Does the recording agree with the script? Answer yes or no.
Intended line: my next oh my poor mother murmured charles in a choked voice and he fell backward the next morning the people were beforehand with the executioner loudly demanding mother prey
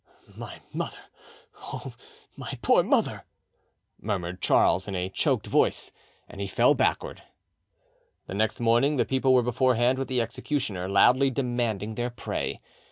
no